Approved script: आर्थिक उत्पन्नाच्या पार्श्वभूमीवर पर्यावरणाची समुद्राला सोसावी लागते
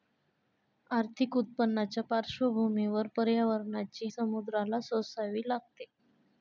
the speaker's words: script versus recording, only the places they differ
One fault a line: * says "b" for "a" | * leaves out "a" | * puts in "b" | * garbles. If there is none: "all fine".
all fine